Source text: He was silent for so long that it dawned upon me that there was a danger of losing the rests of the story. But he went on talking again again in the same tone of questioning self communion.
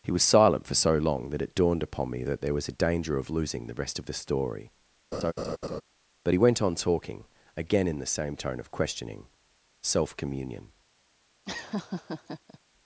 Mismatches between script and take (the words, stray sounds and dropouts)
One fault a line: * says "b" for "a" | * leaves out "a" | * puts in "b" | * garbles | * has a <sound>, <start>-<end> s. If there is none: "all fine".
* says "rest" for "rests"
* has a laugh, 5.1-5.8 s
* leaves out "again"
* has a laugh, 11.5-12.6 s